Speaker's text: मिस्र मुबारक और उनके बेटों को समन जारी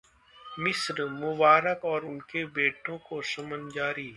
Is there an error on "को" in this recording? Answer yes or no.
no